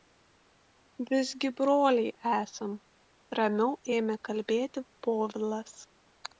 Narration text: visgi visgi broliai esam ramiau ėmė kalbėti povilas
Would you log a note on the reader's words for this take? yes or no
yes